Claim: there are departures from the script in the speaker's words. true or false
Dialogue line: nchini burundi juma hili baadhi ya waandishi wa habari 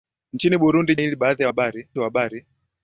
true